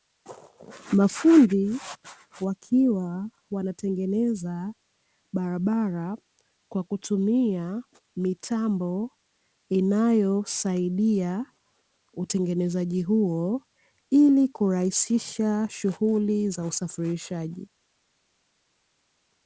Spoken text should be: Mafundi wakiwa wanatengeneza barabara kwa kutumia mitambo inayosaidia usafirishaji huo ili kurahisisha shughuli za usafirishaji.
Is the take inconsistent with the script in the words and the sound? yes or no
yes